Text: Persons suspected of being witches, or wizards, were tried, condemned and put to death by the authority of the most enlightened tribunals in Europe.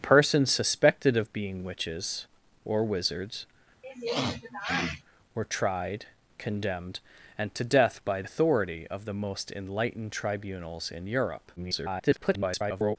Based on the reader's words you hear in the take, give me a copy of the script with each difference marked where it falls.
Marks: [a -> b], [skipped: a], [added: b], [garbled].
Persons suspected of being witches, or wizards, were tried, condemned and [skipped: put] to death by [skipped: the] authority of the most enlightened tribunals in Europe. [garbled]